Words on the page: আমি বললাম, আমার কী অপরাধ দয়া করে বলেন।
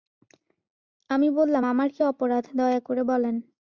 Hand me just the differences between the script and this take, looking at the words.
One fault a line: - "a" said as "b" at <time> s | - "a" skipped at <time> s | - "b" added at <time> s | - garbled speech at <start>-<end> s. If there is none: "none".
none